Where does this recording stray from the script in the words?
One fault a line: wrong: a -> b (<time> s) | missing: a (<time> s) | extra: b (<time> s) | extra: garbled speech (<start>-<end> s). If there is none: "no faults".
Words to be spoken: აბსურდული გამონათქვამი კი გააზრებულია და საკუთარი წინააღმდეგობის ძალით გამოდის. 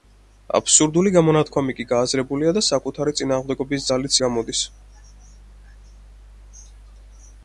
no faults